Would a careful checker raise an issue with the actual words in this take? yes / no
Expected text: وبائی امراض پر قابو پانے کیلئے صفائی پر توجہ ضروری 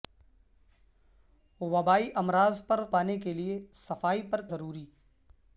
yes